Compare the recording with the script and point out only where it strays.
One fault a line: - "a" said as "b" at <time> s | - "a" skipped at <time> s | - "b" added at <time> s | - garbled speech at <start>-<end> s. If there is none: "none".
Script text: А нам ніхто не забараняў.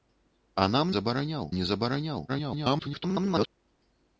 - "ніхто" said as "забараняў" at 1.0 s
- garbled speech at 2.3-3.5 s